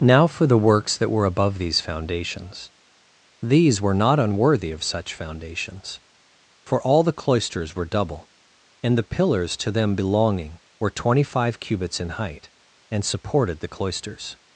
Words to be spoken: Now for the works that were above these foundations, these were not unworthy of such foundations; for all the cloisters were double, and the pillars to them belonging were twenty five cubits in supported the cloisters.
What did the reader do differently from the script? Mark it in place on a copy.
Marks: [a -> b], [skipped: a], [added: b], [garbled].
Now for the works that were above these foundations, these were not unworthy of such foundations; for all the cloisters were double, and the pillars to them belonging were twenty five cubits in [added: height and] supported the cloisters.